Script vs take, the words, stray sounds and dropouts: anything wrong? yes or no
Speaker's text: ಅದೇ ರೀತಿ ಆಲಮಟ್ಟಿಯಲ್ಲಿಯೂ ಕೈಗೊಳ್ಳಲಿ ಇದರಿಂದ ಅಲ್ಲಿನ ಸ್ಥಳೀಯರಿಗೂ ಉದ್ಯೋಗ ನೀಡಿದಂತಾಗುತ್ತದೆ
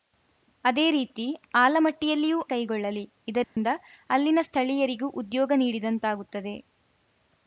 yes